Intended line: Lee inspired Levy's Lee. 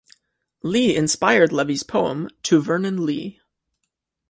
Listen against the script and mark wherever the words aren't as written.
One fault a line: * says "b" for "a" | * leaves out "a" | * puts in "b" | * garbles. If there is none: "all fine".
* puts in "poem To Vernon"